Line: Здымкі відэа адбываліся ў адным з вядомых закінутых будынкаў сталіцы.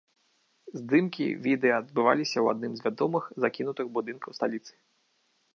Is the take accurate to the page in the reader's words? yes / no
yes